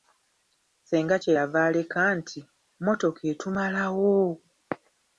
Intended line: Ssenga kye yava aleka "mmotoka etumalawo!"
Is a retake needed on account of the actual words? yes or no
yes